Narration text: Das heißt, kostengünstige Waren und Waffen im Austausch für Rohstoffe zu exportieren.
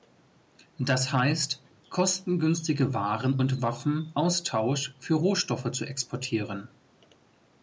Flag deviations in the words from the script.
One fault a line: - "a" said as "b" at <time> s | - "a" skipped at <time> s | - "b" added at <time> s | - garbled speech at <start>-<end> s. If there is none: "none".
- "im" skipped at 4.1 s